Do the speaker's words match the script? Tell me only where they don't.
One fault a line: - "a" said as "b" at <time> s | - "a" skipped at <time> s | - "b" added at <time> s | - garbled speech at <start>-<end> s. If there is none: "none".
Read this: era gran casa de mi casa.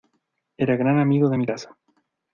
- "casa" said as "amigo" at 1.0 s